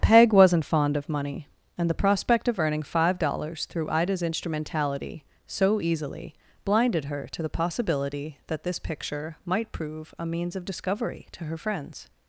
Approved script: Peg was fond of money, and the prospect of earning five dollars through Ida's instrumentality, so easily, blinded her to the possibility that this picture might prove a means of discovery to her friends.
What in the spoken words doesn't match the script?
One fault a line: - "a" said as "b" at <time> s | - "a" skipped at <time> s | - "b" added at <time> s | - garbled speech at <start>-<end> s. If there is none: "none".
- "was" said as "wasn't" at 0.3 s